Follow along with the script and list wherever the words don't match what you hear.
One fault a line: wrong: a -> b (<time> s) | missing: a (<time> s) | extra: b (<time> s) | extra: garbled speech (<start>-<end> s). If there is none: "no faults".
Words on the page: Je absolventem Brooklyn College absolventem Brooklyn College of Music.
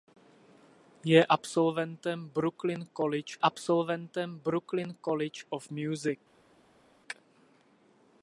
no faults